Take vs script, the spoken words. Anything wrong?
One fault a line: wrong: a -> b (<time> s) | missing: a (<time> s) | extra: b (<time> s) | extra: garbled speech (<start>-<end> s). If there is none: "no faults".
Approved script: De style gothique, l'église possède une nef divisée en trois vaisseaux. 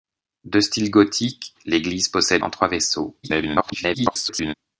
missing: une nef divisée (2.4 s)
extra: garbled speech (3.2-4.5 s)